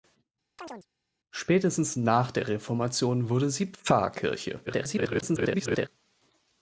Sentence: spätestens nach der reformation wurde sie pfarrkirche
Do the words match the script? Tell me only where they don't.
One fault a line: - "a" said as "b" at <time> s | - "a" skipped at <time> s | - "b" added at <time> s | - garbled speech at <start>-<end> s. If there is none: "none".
- garbled speech at 4.7-5.9 s